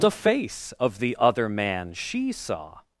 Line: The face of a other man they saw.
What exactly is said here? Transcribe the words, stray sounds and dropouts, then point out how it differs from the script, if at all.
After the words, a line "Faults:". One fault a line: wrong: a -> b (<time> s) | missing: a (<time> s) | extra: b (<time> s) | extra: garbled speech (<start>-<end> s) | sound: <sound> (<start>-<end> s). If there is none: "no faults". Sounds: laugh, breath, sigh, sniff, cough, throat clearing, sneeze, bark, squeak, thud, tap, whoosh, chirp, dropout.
The face of the other man she saw.
Faults:
wrong: a -> the (1.0 s)
wrong: they -> she (1.9 s)